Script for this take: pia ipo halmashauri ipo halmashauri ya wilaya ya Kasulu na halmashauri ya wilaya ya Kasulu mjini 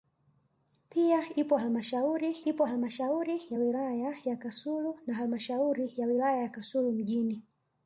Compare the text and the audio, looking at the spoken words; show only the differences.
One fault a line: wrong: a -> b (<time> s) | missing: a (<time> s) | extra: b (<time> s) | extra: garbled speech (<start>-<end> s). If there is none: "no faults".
no faults